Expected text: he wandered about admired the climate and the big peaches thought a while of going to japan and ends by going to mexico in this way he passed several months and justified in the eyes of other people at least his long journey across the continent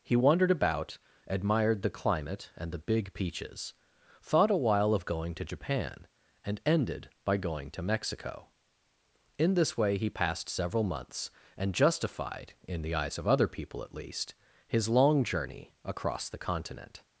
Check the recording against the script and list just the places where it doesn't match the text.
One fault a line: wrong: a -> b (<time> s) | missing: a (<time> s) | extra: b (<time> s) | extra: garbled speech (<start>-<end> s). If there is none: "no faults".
wrong: ends -> ended (6.7 s)